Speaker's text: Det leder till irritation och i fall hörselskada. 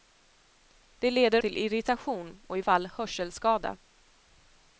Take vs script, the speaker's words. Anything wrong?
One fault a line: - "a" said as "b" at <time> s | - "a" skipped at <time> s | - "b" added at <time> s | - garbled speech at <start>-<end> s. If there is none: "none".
none